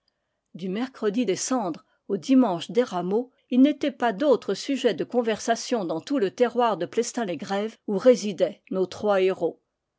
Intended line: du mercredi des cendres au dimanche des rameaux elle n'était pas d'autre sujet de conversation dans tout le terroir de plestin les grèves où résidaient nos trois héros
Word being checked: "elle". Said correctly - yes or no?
no